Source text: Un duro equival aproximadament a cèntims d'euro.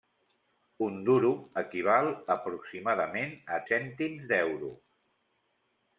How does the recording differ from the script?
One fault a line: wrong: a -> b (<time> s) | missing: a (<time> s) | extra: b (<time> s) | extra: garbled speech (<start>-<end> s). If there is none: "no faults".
no faults